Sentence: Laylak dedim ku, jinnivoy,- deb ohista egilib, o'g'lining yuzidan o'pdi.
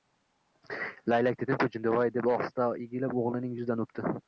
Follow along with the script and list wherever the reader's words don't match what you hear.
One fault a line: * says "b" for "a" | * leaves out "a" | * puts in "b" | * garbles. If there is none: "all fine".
all fine